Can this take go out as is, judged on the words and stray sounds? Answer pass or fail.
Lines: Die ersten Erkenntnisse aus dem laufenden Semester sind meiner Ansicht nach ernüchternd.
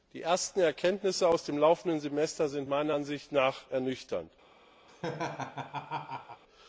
fail